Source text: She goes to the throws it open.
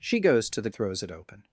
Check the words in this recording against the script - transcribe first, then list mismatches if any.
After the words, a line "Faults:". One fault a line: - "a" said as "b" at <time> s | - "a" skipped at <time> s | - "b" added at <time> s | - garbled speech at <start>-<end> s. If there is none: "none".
She goes to the throws it open.
Faults:
none